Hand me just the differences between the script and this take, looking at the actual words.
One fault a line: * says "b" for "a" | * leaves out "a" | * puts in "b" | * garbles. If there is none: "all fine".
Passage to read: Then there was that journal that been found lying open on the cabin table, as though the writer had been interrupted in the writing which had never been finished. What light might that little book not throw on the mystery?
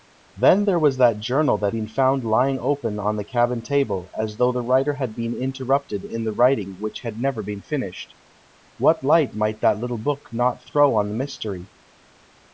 all fine